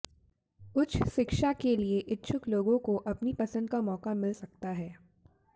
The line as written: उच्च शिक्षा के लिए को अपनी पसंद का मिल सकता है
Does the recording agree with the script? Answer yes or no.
no